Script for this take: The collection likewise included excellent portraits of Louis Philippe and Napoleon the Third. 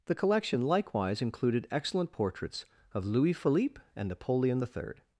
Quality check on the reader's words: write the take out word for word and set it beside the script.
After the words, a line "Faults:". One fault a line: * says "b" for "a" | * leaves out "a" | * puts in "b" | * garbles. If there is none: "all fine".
The collection likewise included excellent portraits of Louis Philippe and Napoleon the Third.
Faults:
all fine